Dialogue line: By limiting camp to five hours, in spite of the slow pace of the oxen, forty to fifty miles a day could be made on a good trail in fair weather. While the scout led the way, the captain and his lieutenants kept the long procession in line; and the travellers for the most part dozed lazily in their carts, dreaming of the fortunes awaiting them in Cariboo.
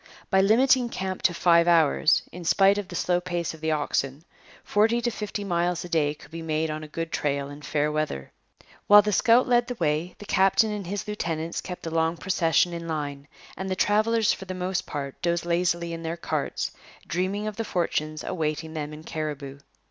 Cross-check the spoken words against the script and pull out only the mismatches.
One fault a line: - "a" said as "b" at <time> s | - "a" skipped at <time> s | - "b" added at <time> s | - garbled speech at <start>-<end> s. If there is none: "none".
none